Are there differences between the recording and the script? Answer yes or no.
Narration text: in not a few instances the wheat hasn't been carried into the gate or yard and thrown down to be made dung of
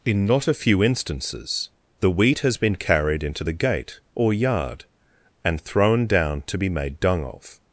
yes